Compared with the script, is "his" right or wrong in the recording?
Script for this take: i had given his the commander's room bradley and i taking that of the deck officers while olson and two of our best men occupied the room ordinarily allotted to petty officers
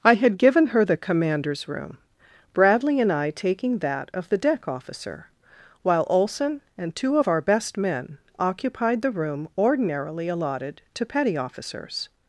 wrong